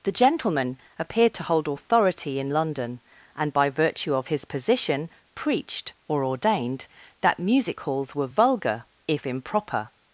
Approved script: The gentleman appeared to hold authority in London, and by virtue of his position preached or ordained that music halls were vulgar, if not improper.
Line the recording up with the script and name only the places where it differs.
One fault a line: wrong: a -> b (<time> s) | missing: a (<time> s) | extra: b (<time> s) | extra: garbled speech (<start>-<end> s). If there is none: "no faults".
missing: not (9.3 s)